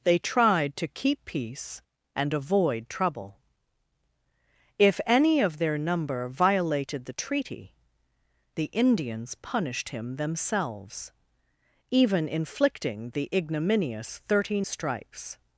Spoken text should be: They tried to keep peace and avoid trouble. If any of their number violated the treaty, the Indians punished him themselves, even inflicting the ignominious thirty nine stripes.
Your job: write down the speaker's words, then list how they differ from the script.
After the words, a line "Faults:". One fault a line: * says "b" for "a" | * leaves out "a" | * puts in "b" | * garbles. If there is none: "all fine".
They tried to keep peace and avoid trouble. If any of their number violated the treaty, the Indians punished him themselves, even inflicting the ignominious thirty stripes.
Faults:
* leaves out "nine"